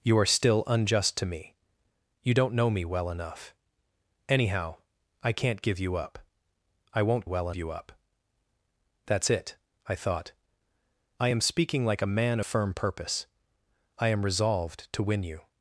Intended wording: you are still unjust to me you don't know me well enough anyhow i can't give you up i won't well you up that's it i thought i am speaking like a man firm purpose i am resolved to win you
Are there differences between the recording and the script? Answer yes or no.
no